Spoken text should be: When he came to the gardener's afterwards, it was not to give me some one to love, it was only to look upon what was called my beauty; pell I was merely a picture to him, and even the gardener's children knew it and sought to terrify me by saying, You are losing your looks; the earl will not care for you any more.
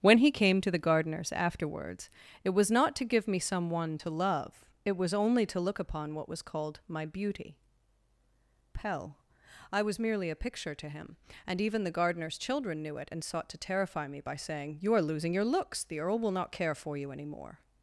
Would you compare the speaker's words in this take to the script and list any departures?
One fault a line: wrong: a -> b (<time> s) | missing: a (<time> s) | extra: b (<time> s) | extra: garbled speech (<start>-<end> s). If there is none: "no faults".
no faults